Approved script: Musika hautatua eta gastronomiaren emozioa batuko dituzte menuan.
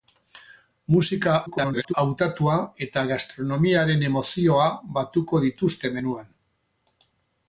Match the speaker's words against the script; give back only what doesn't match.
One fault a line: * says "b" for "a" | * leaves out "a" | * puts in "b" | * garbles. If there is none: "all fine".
* garbles